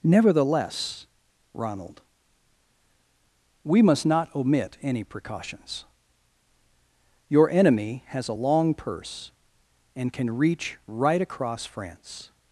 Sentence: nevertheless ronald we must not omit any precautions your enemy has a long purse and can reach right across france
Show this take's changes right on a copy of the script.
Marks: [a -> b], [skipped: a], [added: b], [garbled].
nevertheless ronald we must not omit any precautions your enemy has a long purse and can reach right across france